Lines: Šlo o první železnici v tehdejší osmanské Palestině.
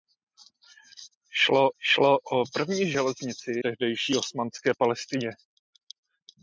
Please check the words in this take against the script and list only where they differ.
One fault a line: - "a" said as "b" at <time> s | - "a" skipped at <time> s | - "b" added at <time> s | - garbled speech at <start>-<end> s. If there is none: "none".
- "šlo" added at 1.8 s
- "v" skipped at 3.5 s